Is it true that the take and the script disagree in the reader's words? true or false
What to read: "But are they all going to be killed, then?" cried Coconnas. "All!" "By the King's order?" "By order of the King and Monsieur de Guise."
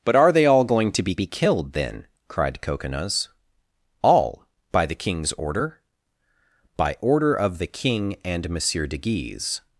true